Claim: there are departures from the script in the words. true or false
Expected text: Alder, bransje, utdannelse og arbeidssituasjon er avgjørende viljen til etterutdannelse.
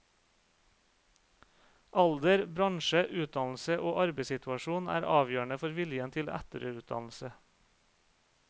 true